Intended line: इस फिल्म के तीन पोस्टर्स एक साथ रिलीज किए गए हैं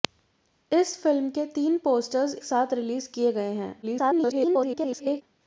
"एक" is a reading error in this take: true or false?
true